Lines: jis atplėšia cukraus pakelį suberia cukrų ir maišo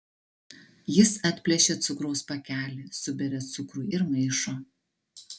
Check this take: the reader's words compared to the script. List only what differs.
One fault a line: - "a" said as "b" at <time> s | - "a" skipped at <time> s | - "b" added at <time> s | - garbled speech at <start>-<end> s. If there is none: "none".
none